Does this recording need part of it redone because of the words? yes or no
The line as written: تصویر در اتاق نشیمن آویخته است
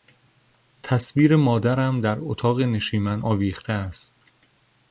yes